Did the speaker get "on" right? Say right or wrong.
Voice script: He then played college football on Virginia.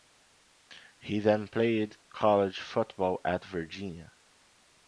wrong